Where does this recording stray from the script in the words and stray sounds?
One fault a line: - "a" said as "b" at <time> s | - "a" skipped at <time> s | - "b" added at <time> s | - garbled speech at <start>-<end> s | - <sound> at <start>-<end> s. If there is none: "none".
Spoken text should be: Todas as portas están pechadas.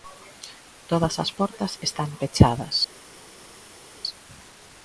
none